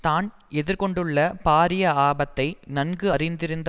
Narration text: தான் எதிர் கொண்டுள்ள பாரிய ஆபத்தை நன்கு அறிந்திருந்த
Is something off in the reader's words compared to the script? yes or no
no